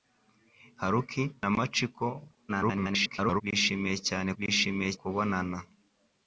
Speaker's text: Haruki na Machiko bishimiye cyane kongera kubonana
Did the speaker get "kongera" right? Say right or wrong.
wrong